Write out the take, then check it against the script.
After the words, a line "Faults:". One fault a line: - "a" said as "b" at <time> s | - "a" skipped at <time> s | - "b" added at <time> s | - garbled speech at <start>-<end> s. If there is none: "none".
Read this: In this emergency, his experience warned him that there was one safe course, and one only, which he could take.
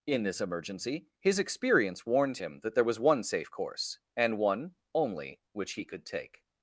In this emergency, his experience warned him that there was one safe course, and one only, which he could take.
Faults:
none